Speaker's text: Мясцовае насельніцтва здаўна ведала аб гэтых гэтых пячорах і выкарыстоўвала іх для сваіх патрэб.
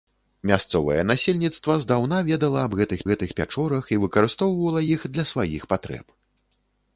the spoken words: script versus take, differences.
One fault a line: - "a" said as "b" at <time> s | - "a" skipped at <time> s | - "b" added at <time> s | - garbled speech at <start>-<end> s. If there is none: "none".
none